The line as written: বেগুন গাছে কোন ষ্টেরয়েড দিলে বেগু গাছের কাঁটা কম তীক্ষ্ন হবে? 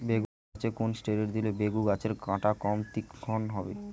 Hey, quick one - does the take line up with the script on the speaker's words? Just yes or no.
yes